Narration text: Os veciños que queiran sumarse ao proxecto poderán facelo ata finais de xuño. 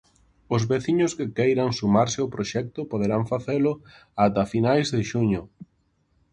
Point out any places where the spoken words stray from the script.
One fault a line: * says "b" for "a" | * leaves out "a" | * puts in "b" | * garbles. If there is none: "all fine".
all fine